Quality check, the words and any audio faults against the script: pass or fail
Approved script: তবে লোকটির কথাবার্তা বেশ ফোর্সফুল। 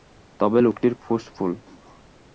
fail